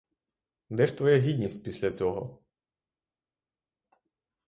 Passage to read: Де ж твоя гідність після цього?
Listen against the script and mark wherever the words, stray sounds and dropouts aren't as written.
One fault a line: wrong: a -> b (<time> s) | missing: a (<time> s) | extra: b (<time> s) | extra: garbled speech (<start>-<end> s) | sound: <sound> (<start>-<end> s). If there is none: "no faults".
no faults